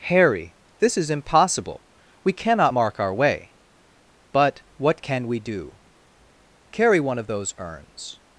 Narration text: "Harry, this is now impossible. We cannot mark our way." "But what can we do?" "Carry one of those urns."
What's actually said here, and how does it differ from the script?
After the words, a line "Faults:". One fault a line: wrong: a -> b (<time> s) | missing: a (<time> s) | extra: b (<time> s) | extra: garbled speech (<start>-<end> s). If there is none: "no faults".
"Harry, this is impossible. We cannot mark our way." "But what can we do?" "Carry one of those urns."
Faults:
missing: now (1.1 s)